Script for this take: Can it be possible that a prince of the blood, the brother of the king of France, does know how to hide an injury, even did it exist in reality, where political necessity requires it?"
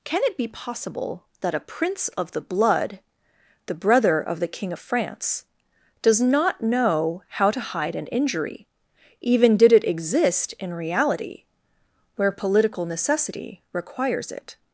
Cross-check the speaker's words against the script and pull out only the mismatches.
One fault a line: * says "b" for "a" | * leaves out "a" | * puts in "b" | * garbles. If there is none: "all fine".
* puts in "not"